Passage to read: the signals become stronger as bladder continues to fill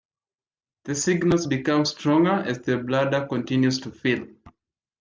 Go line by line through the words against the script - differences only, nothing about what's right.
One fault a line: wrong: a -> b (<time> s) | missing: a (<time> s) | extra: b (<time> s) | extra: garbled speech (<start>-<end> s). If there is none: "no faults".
extra: the (2.6 s)